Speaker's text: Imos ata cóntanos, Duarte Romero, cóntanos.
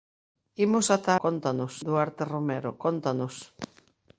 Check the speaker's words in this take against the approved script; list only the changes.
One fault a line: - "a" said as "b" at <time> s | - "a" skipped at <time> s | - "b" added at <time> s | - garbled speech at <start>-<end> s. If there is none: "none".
none